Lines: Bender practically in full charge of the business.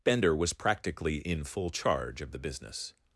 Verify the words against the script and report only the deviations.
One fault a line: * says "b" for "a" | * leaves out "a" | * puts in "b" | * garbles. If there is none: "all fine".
* puts in "was"